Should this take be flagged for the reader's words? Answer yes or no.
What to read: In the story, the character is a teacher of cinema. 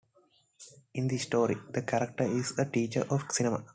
no